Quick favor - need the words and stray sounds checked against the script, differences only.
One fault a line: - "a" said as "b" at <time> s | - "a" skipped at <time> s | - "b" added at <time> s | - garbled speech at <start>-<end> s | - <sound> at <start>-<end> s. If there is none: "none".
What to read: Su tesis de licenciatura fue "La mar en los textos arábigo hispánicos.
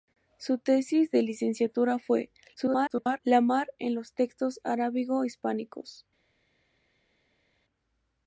- garbled speech at 2.6-3.2 s